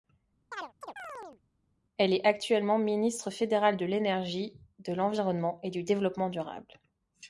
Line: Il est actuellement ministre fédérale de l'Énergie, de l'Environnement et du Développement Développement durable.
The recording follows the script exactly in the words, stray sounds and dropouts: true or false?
false